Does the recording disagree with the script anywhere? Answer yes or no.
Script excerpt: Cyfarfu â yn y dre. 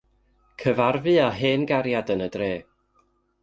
yes